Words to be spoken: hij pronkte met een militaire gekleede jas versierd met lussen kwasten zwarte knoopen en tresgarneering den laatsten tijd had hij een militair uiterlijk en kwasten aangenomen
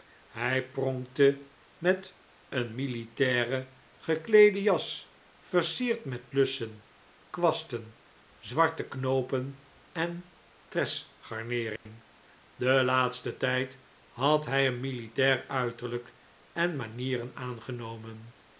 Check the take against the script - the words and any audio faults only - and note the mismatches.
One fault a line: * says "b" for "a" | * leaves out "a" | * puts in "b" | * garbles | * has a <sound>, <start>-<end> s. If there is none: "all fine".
* has a dropout, 11.8-11.9 s
* says "manieren" for "kwasten"